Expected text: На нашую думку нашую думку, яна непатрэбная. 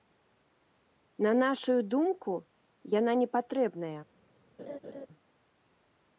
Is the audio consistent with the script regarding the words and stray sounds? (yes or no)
no